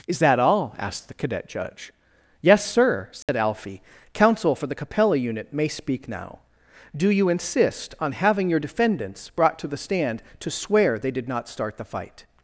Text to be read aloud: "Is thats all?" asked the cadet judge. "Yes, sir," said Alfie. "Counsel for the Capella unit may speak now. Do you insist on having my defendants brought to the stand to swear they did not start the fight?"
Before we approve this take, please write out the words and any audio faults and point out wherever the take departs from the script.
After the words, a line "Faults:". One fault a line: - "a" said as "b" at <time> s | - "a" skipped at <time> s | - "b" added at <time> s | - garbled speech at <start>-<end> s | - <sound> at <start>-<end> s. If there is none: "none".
"Is that all?" asked the cadet judge. "Yes, sir," said Alfie. "Counsel for the Capella unit may speak now. Do you insist on having your defendants brought to the stand to swear they did not start the fight?"
Faults:
- "thats" said as "that" at 0.2 s
- dropout at 3.2-3.3 s
- "my" said as "your" at 8.5 s